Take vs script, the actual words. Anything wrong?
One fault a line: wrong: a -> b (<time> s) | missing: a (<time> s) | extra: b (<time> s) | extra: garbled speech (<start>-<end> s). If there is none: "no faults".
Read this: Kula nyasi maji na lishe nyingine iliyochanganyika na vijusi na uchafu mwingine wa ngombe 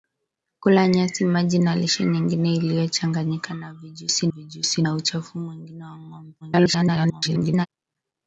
extra: vijusi (4.3 s)
extra: garbled speech (6.4-7.7 s)